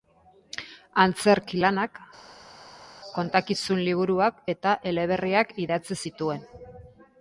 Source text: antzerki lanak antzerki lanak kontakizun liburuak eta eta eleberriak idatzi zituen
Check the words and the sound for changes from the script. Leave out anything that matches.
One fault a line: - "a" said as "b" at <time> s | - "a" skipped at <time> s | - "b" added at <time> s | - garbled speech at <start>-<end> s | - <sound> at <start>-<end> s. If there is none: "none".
- "antzerki lanak" skipped at 2.0 s
- "eta" skipped at 4.8 s